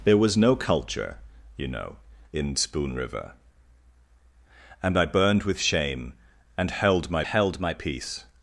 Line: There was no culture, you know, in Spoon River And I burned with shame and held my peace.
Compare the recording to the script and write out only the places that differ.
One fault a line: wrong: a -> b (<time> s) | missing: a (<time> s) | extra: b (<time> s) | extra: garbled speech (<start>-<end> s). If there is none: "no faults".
extra: held my (7.2 s)